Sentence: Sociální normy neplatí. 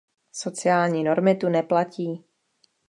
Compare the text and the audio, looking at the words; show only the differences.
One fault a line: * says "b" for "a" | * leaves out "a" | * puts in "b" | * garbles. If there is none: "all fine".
* puts in "tu"